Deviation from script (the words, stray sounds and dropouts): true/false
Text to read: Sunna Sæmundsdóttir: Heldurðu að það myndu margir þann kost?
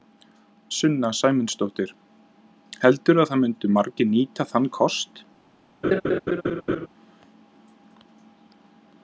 true